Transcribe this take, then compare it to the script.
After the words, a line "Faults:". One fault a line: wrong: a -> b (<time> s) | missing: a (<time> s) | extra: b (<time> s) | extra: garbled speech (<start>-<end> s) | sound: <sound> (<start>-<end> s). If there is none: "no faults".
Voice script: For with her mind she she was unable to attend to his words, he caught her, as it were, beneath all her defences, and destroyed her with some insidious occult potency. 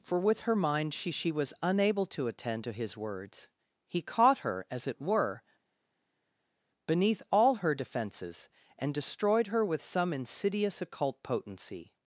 For with her mind she she was unable to attend to his words, he caught her, as it were, beneath all her defences, and destroyed her with some insidious occult potency.
Faults:
no faults